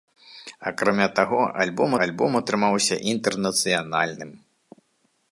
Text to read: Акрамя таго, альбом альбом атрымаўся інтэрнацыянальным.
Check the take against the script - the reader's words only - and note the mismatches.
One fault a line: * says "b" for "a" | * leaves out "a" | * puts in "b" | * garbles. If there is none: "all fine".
all fine